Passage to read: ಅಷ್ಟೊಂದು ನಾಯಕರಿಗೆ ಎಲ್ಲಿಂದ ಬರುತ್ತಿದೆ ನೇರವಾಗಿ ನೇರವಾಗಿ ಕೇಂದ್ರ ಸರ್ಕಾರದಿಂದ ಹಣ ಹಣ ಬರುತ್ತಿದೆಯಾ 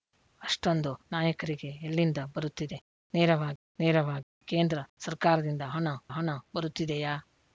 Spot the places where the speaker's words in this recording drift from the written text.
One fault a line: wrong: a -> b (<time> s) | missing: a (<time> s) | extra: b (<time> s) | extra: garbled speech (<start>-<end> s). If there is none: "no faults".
no faults